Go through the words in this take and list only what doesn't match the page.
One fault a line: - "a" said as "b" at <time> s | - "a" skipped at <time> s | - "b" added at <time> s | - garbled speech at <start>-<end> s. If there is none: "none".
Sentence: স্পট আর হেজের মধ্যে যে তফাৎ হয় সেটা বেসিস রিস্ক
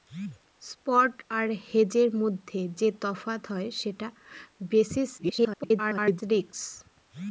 - garbled speech at 5.2-6.2 s